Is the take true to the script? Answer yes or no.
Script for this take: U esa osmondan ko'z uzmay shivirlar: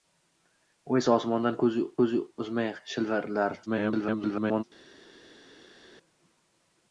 no